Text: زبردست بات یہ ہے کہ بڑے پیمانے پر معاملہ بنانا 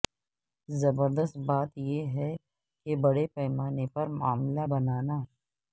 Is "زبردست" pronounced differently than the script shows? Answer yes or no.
no